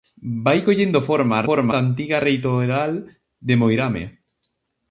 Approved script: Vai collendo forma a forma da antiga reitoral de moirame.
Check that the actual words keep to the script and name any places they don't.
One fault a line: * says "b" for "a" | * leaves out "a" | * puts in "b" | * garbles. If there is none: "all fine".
all fine